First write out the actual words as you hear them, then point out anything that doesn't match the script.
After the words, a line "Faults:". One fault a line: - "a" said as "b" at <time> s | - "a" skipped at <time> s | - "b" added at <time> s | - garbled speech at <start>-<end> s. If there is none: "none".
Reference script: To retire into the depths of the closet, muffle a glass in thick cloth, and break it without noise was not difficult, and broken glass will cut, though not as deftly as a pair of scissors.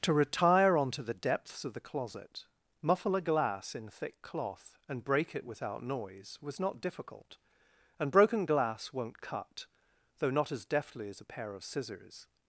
To retire onto the depths of the closet, muffle a glass in thick cloth, and break it without noise was not difficult, and broken glass won't cut, though not as deftly as a pair of scissors.
Faults:
- "into" said as "onto" at 0.8 s
- "will" said as "won't" at 8.9 s